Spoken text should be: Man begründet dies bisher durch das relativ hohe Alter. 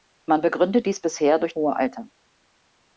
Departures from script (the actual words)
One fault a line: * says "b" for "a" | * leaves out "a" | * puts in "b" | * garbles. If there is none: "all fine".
* leaves out "das relativ"